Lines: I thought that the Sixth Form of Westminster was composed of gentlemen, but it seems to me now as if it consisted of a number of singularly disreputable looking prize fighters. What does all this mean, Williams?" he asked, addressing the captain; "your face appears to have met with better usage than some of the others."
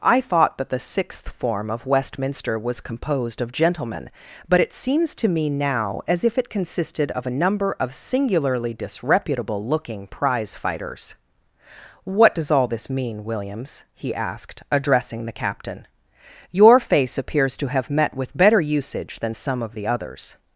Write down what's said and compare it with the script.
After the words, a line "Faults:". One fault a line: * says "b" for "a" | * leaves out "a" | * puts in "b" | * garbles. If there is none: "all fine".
I thought that the Sixth Form of Westminster was composed of gentlemen, but it seems to me now as if it consisted of a number of singularly disreputable looking prize fighters. What does all this mean, Williams?" he asked, addressing the captain; "your face appears to have met with better usage than some of the others."
Faults:
all fine